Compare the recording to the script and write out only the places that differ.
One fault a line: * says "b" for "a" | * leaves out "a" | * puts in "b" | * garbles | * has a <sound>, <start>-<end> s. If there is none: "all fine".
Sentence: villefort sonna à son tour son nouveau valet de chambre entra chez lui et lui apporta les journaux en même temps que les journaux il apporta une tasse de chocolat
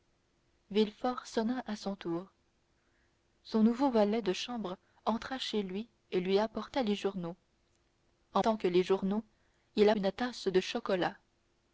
* leaves out "même"
* leaves out "apporta"